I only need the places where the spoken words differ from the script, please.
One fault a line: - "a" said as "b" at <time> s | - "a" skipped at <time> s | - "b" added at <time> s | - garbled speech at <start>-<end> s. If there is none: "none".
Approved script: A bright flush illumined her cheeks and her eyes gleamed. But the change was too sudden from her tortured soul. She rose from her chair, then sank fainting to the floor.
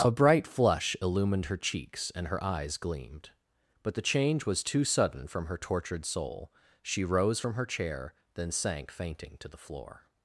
none